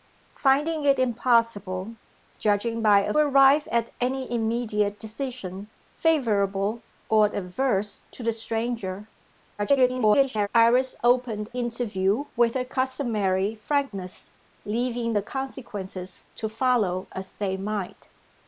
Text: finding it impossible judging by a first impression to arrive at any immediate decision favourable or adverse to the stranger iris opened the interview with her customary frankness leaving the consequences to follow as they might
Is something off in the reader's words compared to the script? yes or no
yes